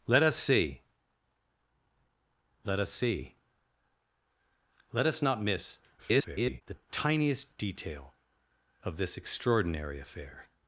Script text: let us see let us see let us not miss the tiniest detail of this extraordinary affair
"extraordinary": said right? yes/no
yes